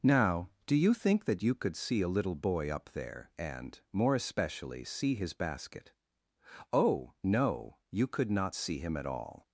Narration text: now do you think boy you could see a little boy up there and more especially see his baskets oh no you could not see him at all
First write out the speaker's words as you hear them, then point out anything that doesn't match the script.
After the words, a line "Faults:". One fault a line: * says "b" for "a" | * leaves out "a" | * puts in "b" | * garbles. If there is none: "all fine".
now do you think that you could see a little boy up there and more especially see his basket oh no you could not see him at all
Faults:
* says "that" for "boy"
* says "basket" for "baskets"